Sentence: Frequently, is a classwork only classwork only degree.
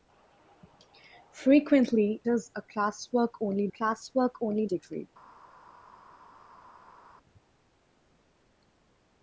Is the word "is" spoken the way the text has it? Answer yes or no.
yes